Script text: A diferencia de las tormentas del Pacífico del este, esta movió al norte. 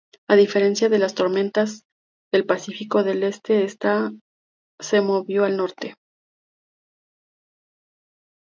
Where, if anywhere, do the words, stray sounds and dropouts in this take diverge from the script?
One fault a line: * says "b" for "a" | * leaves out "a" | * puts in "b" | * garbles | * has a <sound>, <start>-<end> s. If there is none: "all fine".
* puts in "se"